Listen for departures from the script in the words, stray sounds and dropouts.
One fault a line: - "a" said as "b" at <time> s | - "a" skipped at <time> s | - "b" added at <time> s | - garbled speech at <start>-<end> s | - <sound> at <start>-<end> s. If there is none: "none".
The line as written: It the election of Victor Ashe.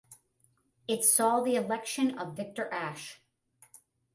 - "saw" added at 1.1 s